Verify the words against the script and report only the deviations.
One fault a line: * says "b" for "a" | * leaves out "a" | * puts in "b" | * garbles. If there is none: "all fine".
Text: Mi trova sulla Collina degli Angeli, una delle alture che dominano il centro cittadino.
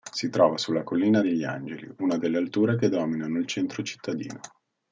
* says "Si" for "Mi"